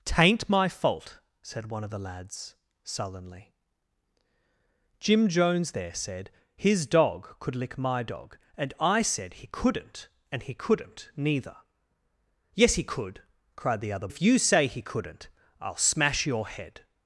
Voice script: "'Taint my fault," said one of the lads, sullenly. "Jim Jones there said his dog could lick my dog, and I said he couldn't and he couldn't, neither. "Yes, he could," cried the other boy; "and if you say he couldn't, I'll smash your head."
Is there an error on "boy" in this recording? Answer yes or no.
yes